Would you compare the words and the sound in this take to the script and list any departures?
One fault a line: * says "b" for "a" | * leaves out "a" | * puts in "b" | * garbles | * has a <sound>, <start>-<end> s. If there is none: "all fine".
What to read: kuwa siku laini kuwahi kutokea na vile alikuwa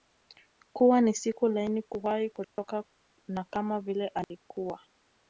* puts in "ni"
* has a dropout, 2.4-2.6 s
* puts in "kama"
* has a dropout, 4.2-4.3 s